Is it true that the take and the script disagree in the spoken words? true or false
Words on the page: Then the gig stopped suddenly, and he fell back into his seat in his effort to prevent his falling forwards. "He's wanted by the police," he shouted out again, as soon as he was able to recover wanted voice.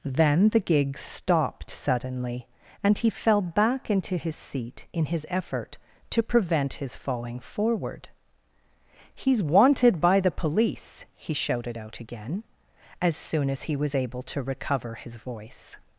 true